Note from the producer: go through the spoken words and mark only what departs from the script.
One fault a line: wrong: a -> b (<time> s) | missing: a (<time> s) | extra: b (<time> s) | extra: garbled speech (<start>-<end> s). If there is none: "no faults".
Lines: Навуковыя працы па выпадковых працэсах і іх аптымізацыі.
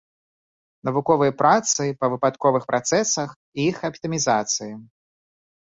no faults